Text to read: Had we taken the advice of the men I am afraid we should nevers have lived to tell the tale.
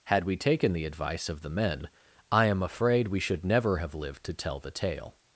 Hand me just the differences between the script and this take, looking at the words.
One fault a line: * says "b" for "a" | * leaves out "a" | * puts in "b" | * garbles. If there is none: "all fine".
* says "never" for "nevers"